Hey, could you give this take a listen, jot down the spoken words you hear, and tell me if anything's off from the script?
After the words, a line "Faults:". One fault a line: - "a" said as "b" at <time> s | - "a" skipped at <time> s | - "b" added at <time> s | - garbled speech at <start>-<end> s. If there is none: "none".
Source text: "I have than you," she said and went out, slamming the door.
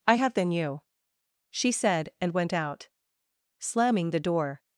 "I have than you," she said and went out, slamming the door.
Faults:
none